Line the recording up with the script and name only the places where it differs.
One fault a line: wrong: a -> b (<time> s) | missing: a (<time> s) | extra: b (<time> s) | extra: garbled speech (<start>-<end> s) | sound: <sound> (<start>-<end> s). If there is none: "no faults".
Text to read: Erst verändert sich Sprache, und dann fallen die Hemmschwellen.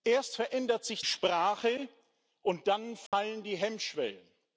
sound: dropout (3.1-3.1 s)